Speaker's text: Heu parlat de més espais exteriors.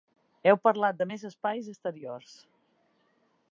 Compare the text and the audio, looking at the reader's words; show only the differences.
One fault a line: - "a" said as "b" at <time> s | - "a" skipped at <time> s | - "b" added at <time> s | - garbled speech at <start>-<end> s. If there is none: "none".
none